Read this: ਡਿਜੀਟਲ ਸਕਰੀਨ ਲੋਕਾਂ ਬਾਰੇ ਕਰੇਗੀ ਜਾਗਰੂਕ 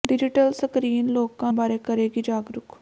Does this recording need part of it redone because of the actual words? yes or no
no